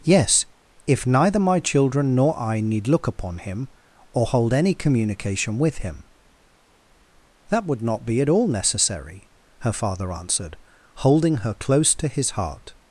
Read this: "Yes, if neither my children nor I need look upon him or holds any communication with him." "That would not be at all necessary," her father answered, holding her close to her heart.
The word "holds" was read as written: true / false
false